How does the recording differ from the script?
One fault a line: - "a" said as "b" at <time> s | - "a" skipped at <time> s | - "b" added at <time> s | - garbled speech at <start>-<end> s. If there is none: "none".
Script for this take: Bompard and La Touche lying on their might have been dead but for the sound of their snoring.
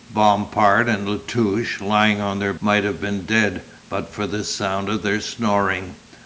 none